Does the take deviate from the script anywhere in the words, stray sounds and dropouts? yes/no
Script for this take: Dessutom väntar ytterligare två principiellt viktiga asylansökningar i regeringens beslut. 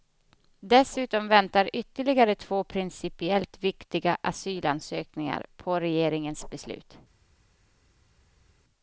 yes